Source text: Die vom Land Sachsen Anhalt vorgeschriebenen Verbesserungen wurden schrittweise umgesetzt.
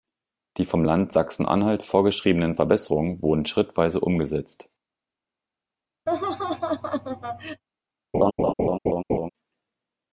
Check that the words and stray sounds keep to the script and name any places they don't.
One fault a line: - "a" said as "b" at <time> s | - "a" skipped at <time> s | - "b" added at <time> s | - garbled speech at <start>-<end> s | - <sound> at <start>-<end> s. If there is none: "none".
- laugh at 6.1-7.6 s
- laugh at 8.1-9.3 s